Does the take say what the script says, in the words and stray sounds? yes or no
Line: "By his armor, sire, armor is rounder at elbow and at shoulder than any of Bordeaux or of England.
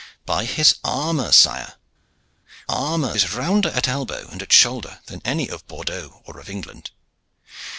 yes